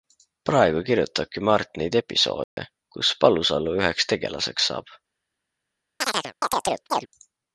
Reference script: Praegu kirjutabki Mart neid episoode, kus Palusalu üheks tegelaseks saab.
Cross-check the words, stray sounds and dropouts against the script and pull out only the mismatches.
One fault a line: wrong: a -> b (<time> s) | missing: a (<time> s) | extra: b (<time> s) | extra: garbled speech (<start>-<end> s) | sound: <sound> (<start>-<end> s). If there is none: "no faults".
sound: dropout (2.4-2.6 s)
sound: chirp (6.0-7.1 s)